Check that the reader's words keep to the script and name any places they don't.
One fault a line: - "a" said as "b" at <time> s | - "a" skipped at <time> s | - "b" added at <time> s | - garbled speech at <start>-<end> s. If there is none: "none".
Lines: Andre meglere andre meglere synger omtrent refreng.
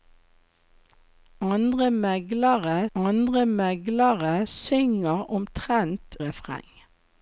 none